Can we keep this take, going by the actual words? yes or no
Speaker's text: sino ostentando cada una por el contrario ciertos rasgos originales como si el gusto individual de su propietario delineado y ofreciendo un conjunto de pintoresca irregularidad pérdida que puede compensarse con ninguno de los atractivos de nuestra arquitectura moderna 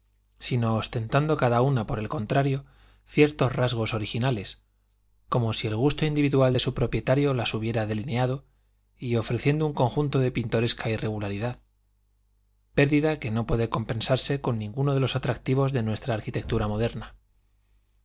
no